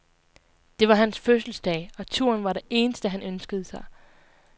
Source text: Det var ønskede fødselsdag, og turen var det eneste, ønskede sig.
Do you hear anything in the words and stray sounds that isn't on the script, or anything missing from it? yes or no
yes